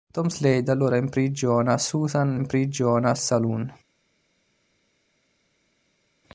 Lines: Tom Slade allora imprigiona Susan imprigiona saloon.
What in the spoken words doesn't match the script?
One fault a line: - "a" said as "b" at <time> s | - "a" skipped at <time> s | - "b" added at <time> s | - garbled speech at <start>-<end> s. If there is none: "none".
none